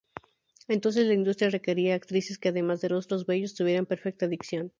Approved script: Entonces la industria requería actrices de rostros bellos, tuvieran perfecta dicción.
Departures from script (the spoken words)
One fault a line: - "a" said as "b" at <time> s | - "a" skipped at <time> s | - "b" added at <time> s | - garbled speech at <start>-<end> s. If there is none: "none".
- "que además" added at 2.4 s